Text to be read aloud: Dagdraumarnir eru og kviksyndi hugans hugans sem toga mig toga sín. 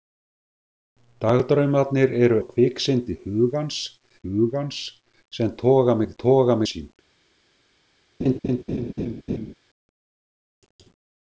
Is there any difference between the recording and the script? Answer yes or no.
no